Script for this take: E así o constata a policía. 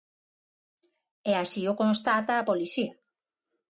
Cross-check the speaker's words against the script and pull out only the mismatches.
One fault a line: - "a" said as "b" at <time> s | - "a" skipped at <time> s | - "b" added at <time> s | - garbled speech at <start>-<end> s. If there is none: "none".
none